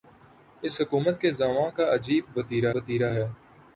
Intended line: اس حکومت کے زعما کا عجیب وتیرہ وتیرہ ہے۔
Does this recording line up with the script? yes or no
yes